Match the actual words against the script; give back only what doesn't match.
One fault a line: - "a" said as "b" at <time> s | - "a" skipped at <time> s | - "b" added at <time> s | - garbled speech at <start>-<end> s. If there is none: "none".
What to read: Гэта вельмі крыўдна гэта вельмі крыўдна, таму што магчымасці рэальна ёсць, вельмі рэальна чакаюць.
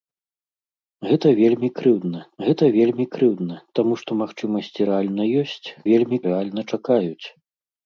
none